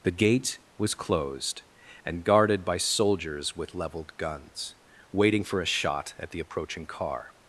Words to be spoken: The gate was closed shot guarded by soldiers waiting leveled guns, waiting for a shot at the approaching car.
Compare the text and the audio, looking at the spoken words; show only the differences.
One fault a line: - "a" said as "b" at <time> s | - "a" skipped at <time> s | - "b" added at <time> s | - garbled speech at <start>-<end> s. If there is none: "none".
- "shot" said as "and" at 2.0 s
- "waiting" said as "with" at 3.5 s